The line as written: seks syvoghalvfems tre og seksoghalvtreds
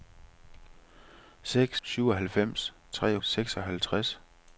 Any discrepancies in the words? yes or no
no